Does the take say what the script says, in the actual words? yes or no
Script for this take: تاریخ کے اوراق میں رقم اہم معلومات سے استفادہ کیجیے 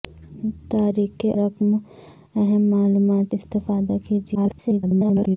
no